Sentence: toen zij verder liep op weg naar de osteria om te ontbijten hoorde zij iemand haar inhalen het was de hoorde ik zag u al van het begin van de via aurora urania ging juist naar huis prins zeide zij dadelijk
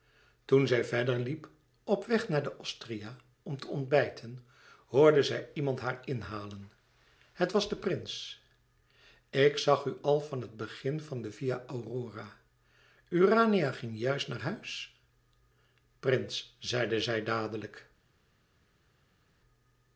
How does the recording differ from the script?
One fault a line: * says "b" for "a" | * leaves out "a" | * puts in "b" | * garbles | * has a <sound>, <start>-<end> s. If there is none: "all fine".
* says "prins" for "hoorde"